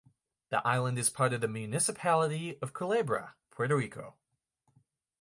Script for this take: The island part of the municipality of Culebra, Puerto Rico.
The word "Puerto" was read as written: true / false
true